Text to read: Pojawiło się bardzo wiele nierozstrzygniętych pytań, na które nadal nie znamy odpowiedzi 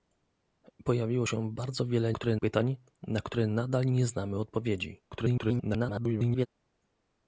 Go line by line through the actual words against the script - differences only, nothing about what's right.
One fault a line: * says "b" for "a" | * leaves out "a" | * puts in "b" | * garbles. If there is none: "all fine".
* says "które" for "nierozstrzygniętych"
* garbles